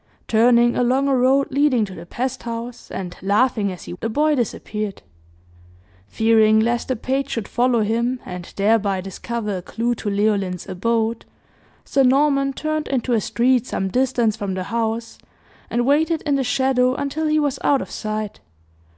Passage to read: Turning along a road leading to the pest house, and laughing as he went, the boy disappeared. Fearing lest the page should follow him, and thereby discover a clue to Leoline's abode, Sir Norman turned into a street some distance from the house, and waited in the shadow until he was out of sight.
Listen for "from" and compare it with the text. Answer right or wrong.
right